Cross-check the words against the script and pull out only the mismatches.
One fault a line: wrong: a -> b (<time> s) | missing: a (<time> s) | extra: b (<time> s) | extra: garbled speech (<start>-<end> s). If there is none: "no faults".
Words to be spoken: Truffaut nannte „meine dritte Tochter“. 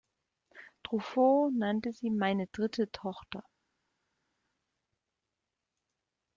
extra: sie (1.9 s)